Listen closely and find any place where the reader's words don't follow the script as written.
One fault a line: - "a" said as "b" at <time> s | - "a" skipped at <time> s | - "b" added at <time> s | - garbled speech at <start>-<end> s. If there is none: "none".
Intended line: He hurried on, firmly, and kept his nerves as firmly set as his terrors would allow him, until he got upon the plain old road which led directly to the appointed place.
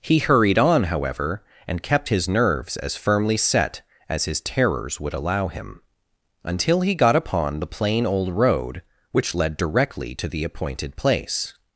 - "firmly" said as "however" at 0.8 s